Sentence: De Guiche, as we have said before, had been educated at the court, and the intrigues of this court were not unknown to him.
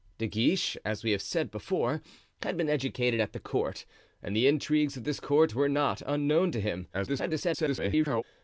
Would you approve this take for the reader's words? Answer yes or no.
no